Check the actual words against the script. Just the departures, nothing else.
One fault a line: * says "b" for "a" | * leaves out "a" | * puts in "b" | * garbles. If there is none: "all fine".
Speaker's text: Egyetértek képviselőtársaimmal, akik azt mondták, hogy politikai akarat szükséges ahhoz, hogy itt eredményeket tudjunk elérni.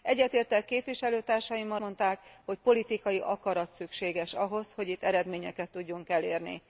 * leaves out "akik azt"